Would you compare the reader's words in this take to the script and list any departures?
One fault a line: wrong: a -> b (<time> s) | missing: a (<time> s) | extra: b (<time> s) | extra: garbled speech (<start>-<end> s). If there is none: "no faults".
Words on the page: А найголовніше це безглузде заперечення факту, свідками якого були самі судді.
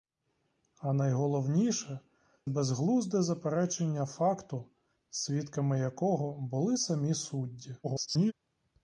missing: це (2.0 s)
extra: garbled speech (7.8-8.3 s)